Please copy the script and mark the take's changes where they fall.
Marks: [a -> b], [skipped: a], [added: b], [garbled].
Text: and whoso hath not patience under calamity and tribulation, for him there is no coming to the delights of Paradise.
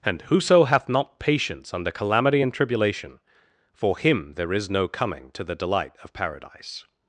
and whoso hath not patience under calamity and tribulation, for him there is no coming to the [delights -> delight] of Paradise.